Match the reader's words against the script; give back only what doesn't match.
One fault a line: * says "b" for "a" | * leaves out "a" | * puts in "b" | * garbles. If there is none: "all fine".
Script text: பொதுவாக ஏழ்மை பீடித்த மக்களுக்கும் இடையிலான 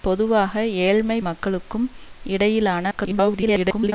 * leaves out "பீடித்த"
* garbles